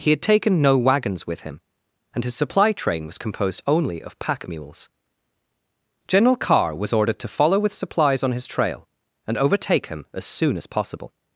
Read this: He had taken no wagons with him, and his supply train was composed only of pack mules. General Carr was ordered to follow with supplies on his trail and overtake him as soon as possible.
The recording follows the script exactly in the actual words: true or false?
true